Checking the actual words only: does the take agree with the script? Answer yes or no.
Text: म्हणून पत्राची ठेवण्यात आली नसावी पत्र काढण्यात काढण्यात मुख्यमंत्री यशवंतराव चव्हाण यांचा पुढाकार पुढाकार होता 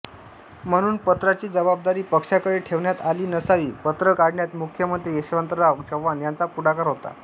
no